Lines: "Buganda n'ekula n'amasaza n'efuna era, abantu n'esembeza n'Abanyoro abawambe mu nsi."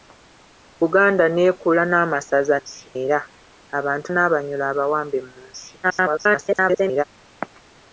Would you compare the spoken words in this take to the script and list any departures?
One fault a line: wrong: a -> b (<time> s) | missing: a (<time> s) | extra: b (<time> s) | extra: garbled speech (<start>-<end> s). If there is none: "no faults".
wrong: n'efuna -> nsi (2.6 s)
missing: n'esembeza (4.1 s)
extra: garbled speech (5.8-7.0 s)